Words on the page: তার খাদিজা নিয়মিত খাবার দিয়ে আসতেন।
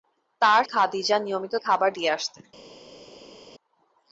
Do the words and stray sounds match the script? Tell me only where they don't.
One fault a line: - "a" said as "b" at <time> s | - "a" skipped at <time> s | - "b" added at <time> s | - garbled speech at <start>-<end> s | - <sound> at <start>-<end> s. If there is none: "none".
none